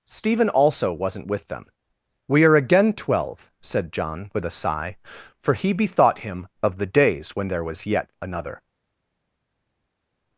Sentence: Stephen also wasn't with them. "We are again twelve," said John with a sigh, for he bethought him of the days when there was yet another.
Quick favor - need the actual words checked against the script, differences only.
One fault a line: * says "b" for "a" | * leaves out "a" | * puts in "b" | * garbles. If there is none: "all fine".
all fine